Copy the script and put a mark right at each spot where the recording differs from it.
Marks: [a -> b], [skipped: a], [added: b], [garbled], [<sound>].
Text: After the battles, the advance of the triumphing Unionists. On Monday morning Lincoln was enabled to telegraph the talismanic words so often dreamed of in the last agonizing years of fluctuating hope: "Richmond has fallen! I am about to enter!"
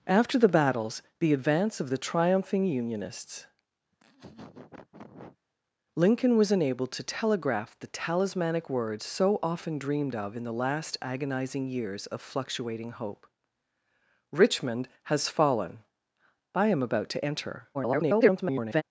After the battles, the advance of the triumphing Unionists. [skipped: On Monday morning] [laugh] Lincoln was enabled to telegraph the talismanic words so often dreamed of in the last agonizing years of fluctuating hope: "Richmond has fallen! I am about to enter!" [garbled]